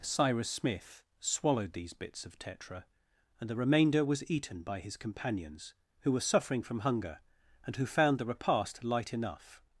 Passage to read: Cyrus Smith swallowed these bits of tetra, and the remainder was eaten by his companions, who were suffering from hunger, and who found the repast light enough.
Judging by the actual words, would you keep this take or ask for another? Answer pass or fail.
pass